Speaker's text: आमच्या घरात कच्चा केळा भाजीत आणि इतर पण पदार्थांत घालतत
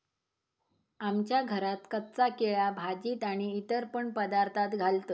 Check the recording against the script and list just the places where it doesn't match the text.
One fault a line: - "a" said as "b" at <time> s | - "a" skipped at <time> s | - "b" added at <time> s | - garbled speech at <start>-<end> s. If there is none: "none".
none